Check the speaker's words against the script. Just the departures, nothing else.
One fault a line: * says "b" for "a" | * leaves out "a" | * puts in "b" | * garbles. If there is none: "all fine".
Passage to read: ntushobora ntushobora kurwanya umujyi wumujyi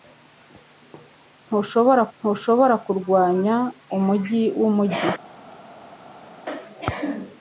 all fine